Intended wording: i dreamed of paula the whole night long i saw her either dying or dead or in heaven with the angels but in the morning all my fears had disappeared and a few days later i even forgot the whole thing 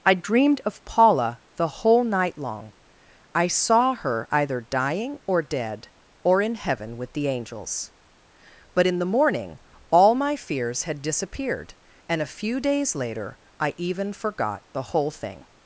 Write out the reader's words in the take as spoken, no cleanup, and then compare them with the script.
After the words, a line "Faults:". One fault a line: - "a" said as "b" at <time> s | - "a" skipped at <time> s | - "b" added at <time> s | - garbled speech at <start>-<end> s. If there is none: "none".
i dreamed of paula the whole night long i saw her either dying or dead or in heaven with the angels but in the morning all my fears had disappeared and a few days later i even forgot the whole thing
Faults:
none